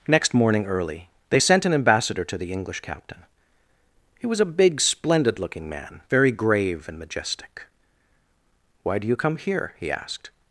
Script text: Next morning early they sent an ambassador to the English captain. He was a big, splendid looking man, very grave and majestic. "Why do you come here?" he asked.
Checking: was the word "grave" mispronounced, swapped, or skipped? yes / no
no